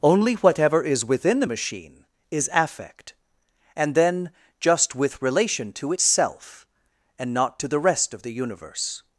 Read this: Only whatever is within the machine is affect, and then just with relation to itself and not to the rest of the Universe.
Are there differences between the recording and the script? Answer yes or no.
no